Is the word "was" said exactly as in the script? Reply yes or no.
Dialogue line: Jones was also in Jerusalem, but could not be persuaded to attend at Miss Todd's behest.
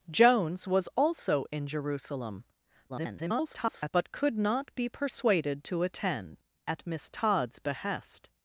yes